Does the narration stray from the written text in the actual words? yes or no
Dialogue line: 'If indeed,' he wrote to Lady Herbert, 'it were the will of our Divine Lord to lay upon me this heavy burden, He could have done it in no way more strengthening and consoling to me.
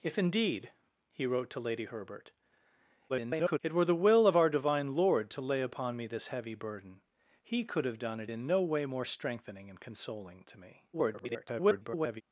yes